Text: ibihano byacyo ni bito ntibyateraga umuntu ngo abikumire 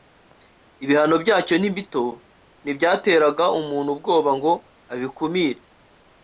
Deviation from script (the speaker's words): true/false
true